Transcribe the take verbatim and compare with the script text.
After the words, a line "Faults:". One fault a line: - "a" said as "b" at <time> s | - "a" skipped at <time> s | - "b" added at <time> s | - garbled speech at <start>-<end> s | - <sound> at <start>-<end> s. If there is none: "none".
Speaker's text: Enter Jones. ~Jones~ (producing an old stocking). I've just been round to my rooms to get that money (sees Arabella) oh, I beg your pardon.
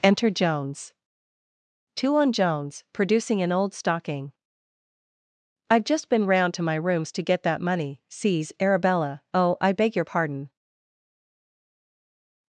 Enter Jones. two on ~Jones~ (producing an old stocking). I've just been round to my rooms to get that money (sees Arabella) oh, I beg your pardon.
Faults:
- "two on" added at 1.9 s